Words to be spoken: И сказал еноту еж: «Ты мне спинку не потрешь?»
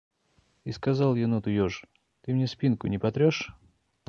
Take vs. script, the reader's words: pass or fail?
pass